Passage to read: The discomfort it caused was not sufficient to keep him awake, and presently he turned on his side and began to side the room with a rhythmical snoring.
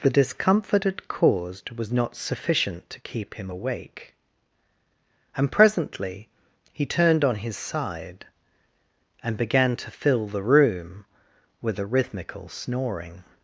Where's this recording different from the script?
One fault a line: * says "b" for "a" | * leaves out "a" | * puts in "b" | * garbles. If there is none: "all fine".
* says "fill" for "side"